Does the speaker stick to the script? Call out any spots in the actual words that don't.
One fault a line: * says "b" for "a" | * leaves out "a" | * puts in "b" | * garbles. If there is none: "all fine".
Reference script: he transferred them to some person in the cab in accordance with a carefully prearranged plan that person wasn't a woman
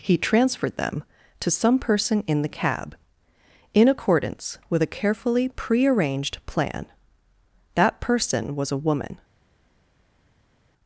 * says "was" for "wasn't"